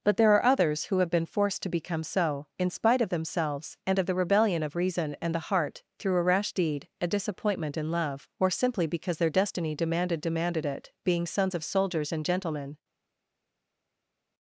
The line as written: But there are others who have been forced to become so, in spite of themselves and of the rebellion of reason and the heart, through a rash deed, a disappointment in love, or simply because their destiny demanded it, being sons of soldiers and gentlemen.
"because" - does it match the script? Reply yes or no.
yes